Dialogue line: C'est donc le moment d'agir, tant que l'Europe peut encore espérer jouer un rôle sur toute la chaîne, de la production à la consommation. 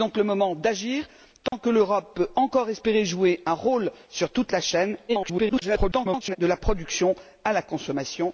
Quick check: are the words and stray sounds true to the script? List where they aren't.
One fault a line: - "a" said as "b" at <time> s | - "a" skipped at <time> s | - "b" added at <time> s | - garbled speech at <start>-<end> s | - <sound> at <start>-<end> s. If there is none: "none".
- dropout at 1.5-1.5 s
- garbled speech at 5.1-6.4 s